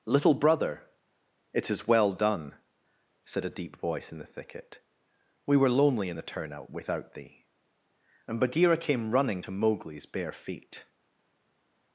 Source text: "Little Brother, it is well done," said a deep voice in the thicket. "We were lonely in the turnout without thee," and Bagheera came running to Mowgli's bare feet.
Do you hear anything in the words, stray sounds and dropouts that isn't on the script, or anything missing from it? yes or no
no